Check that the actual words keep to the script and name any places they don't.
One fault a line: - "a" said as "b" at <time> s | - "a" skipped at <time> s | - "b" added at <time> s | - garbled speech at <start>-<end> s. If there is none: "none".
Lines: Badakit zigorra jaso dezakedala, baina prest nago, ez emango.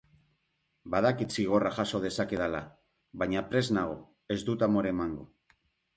- "dut amore" added at 4.5 s